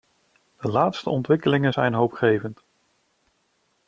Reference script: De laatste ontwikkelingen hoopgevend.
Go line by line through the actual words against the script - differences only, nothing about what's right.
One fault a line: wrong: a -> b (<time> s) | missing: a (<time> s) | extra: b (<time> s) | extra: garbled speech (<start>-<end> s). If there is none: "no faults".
extra: zijn (1.7 s)